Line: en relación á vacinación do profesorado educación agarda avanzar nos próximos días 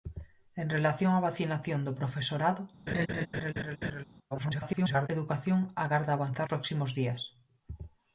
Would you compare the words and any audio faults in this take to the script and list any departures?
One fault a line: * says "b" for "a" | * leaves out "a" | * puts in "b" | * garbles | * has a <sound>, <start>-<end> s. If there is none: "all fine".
* has a laugh, 2.9-4.0 s
* garbles
* leaves out "nos"